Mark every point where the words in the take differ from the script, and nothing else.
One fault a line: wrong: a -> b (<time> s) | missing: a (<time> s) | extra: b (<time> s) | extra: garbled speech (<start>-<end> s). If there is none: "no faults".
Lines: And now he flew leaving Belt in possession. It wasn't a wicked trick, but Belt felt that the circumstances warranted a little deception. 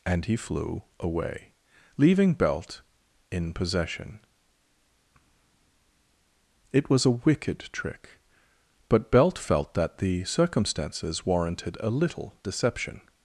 missing: now (0.3 s)
extra: away (1.0 s)
wrong: wasn't -> was (6.9 s)